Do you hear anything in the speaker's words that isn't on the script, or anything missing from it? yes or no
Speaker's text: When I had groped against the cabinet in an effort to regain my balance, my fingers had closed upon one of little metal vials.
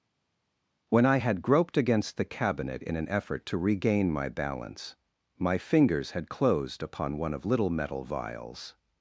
no